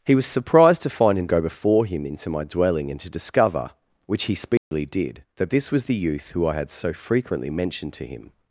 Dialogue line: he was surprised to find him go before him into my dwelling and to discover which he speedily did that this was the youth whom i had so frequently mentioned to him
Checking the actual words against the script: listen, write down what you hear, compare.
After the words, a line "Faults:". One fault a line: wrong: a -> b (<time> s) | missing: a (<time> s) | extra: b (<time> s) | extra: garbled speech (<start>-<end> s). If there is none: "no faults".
he was surprised to find him go before him into my dwelling and to discover which he speedily did that this was the youth who i had so frequently mentioned to him
Faults:
wrong: whom -> who (6.3 s)